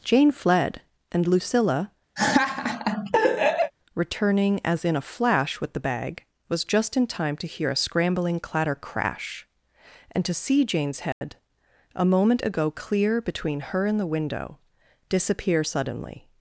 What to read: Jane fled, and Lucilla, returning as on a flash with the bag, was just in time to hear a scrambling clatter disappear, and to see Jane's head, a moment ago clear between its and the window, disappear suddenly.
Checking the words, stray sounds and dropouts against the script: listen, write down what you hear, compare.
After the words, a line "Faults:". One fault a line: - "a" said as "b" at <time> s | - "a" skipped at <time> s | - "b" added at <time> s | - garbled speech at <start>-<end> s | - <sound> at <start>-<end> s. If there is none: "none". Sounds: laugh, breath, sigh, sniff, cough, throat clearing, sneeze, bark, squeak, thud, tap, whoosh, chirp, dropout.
Jane fled, and Lucilla, returning as in a flash with the bag, was just in time to hear a scrambling clatter crash, and to see Jane's head, a moment ago clear between her and the window, disappear suddenly.
Faults:
- laugh at 2.2-3.7 s
- "on" said as "in" at 4.8 s
- "disappear" said as "crash" at 8.7 s
- dropout at 11.1-11.2 s
- "its" said as "her" at 13.6 s